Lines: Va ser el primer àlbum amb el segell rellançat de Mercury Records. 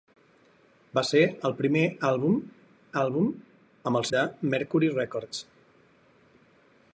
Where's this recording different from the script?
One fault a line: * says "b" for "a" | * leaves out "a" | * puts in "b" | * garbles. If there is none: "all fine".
* puts in "àlbum"
* leaves out "segell rellançat"